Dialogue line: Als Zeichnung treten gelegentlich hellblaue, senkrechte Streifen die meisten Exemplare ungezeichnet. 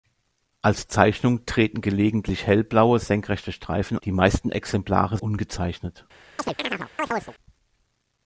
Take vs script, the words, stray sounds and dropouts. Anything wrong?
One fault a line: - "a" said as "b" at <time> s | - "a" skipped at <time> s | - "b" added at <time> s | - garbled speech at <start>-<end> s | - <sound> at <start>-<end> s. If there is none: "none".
- chirp at 6.4-7.3 s